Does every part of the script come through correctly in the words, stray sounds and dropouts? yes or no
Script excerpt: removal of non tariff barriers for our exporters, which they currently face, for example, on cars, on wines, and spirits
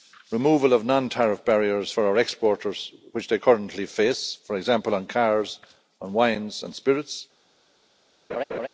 no